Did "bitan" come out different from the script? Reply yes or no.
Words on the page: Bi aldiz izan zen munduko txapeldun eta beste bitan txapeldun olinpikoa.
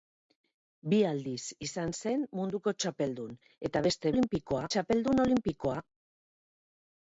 yes